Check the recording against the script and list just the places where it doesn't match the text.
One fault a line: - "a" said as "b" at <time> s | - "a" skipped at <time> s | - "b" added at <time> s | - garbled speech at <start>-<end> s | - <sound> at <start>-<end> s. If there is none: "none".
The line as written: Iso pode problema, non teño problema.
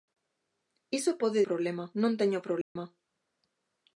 - dropout at 2.6-2.8 s